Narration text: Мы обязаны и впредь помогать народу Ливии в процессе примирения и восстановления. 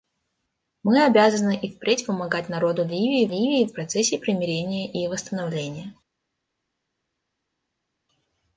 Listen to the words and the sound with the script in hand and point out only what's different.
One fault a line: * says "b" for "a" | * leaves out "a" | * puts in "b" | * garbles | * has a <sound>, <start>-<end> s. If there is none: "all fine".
* puts in "Ливии"